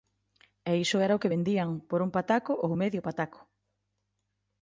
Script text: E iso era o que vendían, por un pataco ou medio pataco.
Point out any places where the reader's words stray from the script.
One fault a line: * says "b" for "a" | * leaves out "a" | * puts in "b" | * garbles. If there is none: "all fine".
all fine